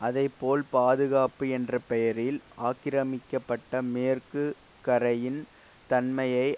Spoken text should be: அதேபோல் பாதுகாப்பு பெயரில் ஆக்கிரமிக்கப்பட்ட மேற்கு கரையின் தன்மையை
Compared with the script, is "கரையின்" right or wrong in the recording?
right